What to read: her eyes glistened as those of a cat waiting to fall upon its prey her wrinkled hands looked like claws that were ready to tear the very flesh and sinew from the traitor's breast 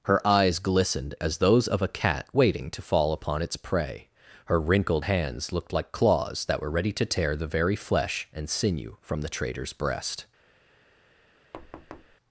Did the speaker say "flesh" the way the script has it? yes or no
yes